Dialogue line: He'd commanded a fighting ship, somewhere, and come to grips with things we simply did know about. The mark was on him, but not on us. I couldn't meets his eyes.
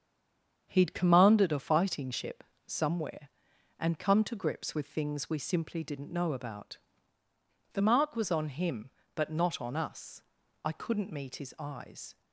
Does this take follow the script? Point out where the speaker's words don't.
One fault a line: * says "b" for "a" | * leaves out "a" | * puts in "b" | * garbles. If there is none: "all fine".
* says "didn't" for "did"
* says "meet" for "meets"